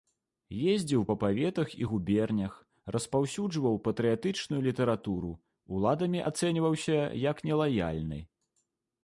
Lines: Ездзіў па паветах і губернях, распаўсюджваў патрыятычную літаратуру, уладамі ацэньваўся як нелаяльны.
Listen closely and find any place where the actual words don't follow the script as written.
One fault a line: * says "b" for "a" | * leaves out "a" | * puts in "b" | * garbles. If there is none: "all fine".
all fine